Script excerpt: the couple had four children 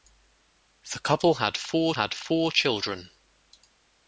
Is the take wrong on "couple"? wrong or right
right